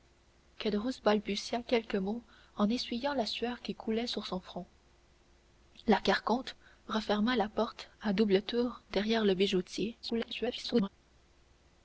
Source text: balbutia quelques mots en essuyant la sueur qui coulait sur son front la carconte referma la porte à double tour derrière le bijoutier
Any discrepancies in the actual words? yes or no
yes